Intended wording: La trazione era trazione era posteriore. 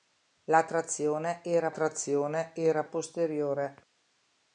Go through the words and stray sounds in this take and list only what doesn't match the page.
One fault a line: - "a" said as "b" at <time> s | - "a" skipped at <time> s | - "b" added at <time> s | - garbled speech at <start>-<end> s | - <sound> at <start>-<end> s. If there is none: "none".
none